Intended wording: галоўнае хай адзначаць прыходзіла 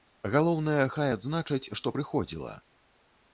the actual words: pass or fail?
fail